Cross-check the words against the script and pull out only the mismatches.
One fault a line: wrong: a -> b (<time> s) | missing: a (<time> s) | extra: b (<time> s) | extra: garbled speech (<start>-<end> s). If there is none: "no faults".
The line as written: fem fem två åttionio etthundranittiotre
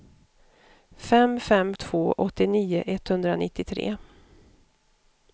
no faults